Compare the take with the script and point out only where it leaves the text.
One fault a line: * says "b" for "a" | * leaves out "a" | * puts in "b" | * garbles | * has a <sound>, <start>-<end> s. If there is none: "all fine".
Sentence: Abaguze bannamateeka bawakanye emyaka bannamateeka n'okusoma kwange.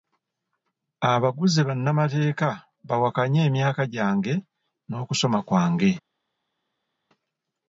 * says "gyange" for "bannamateeka"